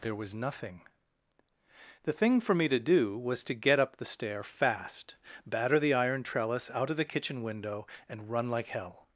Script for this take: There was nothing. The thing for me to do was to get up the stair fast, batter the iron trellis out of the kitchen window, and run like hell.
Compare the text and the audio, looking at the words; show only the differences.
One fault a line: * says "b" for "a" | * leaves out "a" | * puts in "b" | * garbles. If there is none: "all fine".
all fine